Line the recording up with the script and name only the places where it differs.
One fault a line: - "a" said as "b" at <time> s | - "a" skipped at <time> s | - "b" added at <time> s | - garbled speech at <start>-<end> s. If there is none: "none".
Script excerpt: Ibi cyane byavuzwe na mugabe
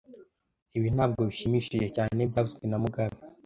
- "ntabwo bishimishije" added at 0.9 s